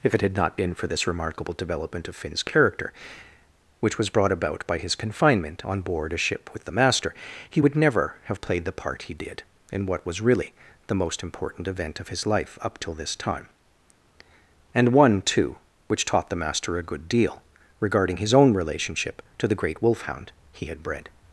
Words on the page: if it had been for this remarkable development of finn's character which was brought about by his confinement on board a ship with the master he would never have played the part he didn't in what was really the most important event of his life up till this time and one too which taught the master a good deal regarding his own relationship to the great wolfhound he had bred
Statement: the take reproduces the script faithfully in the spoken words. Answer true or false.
false